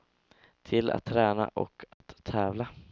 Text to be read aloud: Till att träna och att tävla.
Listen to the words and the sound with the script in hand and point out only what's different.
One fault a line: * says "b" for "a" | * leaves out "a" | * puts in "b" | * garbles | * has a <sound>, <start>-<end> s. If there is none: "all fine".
* has a dropout, 1.9-2.0 s